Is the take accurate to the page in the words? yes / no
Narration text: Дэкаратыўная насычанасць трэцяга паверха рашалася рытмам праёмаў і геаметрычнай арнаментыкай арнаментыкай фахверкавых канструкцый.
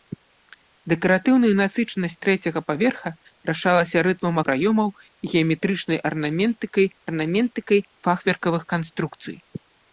yes